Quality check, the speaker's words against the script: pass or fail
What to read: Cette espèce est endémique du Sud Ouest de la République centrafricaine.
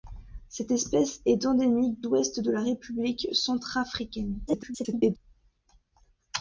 fail